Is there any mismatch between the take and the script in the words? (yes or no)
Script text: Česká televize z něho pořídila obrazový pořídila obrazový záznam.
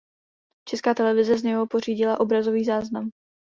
yes